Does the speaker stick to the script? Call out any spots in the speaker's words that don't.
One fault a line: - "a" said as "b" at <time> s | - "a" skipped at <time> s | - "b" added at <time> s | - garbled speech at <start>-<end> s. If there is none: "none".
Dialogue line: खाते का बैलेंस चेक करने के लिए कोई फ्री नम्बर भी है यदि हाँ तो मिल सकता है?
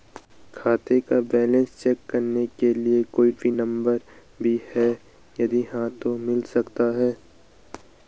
none